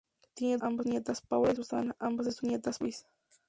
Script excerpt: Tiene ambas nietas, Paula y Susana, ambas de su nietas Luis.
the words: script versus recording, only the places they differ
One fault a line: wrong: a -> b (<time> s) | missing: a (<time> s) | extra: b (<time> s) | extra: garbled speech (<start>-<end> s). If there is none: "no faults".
no faults